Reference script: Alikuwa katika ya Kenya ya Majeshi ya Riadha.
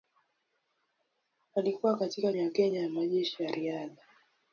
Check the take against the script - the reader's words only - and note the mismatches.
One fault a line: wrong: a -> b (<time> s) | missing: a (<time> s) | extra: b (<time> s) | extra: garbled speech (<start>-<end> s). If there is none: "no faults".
no faults